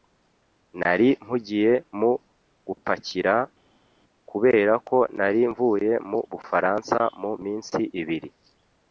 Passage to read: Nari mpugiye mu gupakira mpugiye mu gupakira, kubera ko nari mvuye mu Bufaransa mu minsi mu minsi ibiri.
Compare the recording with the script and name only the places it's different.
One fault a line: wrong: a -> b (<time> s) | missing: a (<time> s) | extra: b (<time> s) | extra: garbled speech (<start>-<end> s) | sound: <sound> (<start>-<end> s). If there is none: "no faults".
missing: mpugiye mu gupakira (3.3 s)
missing: mu minsi (7.8 s)